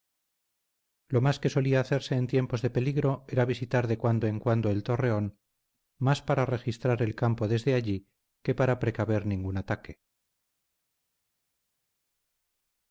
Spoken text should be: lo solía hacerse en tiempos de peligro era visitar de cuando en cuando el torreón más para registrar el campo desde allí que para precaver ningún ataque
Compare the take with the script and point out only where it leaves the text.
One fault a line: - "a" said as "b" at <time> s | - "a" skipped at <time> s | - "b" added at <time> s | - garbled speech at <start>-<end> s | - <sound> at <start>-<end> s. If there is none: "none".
- "más que" added at 1.2 s